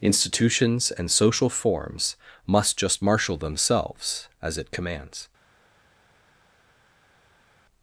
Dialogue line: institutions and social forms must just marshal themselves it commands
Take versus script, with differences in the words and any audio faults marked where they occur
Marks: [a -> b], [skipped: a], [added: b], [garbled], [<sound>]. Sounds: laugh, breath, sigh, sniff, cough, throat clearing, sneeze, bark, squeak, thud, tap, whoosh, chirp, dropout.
institutions and social forms must just marshal themselves [added: as] it commands